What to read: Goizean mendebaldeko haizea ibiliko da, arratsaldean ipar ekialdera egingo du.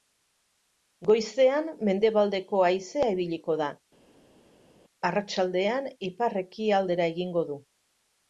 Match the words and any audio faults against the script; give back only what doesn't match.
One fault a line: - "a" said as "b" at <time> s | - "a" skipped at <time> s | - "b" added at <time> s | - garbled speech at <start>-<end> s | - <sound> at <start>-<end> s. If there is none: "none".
none